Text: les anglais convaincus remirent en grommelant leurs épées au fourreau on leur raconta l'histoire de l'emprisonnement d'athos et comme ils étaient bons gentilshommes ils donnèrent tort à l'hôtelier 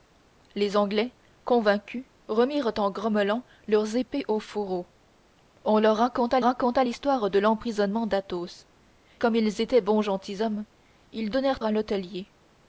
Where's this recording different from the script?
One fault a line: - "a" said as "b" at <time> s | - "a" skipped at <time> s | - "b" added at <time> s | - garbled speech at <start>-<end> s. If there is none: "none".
- "raconta" added at 6.4 s
- "et" skipped at 8.7 s
- "tort" skipped at 11.6 s